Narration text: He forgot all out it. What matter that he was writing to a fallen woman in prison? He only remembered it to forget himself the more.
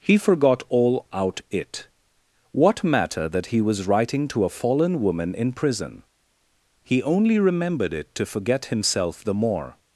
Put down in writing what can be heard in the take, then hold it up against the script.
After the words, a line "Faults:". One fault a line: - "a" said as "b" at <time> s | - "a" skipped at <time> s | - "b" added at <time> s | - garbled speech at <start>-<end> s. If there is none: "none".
He forgot all out it. What matter that he was writing to a fallen woman in prison? He only remembered it to forget himself the more.
Faults:
none